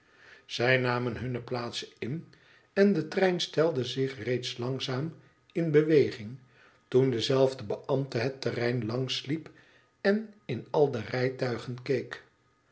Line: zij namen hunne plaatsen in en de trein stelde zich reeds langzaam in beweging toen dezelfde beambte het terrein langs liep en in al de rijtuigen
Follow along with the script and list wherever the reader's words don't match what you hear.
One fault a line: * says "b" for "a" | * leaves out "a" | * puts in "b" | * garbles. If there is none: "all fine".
all fine